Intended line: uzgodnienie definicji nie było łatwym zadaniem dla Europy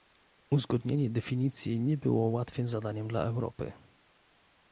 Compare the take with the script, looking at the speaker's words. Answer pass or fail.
pass